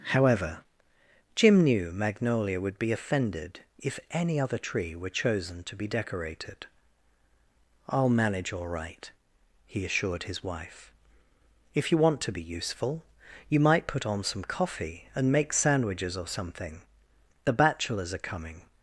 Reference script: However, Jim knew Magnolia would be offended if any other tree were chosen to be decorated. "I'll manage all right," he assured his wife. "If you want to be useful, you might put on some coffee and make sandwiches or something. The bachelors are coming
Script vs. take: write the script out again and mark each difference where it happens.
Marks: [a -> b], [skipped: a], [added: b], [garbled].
However, Jim knew Magnolia would be offended if any other tree were chosen to be decorated. "I'll manage all right," he assured his wife. "If you want to be useful, you might put on some coffee and make sandwiches or something. The bachelors are coming